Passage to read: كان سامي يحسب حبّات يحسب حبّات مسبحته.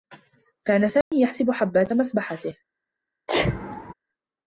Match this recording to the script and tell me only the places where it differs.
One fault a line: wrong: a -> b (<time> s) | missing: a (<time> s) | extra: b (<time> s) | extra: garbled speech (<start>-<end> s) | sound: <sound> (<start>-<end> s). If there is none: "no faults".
sound: dropout (1.0-1.1 s)
missing: يحسب حبّات (1.9 s)
sound: sneeze (3.3-3.9 s)